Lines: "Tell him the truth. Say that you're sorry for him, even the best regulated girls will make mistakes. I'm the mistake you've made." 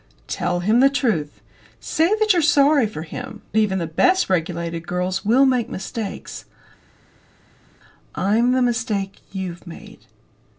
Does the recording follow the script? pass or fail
pass